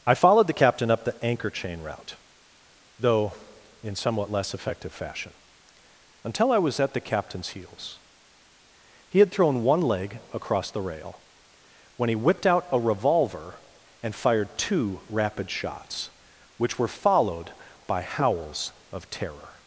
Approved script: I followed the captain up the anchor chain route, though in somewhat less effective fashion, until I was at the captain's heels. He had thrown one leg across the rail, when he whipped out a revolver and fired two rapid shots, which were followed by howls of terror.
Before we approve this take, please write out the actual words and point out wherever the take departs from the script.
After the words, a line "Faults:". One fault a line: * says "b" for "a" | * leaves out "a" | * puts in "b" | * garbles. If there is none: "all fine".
I followed the captain up the anchor chain route, though in somewhat less effective fashion, until I was at the captain's heels. He had thrown one leg across the rail, when he whipped out a revolver and fired two rapid shots, which were followed by howls of terror.
Faults:
all fine